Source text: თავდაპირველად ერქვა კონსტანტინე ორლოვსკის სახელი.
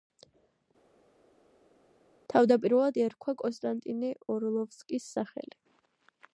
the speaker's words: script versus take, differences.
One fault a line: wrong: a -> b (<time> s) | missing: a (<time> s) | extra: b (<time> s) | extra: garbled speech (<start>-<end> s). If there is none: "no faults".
no faults